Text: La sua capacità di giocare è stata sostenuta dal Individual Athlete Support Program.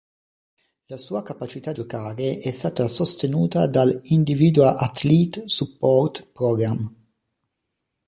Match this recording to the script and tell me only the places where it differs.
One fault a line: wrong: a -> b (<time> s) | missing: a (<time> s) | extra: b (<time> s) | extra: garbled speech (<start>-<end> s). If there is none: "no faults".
missing: di (1.7 s)